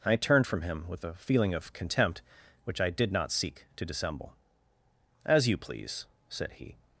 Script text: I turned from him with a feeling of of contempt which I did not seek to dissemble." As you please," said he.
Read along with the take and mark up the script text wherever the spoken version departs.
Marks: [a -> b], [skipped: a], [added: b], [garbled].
I turned from him with a feeling of [skipped: of] contempt which I did not seek to dissemble." As you please," said he.